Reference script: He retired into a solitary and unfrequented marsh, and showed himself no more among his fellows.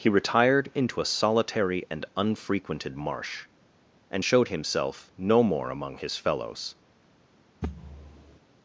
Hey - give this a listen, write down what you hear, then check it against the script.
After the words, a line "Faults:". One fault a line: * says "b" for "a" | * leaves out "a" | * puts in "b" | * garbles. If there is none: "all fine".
He retired into a solitary and unfrequented marsh, and showed himself no more among his fellows.
Faults:
all fine